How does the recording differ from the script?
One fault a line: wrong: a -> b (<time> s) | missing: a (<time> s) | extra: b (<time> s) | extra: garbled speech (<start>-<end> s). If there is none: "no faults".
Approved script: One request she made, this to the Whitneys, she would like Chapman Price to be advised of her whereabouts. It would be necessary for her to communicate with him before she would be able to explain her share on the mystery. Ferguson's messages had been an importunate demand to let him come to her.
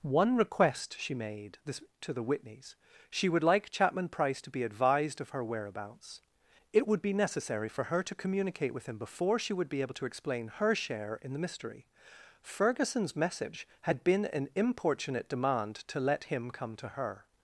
wrong: on -> in (11.2 s)
wrong: messages -> message (13.2 s)